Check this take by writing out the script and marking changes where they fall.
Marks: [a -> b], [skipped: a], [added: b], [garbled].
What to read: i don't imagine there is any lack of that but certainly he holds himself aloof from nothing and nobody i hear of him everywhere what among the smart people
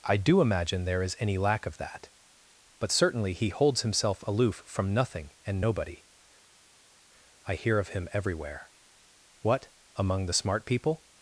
i [don't -> do] imagine there is any lack of that but certainly he holds himself aloof from nothing and nobody i hear of him everywhere what among the smart people